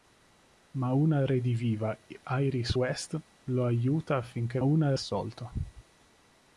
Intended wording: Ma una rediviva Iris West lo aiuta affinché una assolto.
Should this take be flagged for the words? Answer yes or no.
no